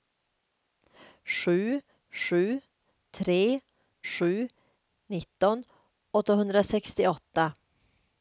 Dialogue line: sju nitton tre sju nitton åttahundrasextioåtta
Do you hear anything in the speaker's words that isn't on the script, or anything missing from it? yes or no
yes